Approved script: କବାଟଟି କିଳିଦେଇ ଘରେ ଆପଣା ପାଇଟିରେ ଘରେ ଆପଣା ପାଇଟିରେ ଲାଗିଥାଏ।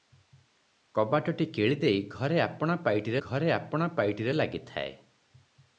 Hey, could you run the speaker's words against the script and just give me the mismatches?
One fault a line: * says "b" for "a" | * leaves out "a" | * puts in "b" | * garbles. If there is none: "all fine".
all fine